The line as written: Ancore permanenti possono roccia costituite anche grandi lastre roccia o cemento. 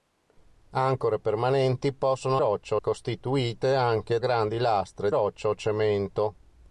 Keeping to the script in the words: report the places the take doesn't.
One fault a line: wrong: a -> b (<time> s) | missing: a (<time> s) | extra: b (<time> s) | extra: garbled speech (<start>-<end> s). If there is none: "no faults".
no faults